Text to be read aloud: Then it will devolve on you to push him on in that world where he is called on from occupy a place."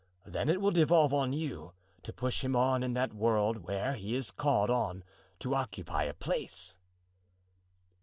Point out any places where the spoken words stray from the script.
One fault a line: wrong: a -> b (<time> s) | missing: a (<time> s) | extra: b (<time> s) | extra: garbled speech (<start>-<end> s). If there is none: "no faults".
wrong: from -> to (5.4 s)